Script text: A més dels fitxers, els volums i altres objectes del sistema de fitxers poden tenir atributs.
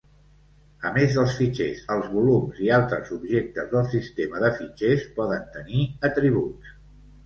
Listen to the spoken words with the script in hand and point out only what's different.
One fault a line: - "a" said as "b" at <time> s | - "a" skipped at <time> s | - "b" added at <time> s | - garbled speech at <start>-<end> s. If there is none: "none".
none